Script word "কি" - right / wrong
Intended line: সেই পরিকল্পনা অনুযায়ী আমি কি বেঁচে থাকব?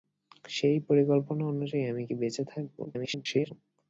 right